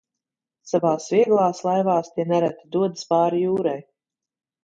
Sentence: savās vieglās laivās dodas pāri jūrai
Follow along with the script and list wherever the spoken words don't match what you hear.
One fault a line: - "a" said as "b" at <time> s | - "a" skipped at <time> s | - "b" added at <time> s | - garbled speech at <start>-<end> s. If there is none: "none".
- "tie nereti" added at 2.1 s